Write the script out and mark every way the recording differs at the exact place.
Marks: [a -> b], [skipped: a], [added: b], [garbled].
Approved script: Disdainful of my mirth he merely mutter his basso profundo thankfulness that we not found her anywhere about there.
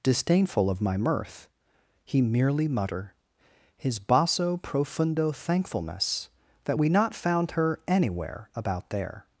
Disdainful of my mirth he merely mutter his basso profundo thankfulness that we not found her anywhere about there.